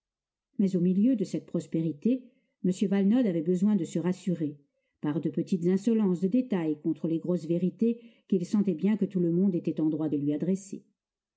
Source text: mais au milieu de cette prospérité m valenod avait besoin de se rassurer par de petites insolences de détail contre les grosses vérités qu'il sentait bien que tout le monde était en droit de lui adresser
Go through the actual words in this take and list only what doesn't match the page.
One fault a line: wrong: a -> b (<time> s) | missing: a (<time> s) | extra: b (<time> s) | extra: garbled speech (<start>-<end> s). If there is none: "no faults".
no faults